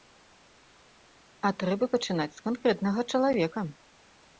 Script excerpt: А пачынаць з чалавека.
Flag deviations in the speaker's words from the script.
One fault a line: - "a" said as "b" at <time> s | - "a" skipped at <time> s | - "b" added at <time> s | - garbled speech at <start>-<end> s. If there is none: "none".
- "трэба" added at 1.6 s
- "канкрэтнага" added at 2.5 s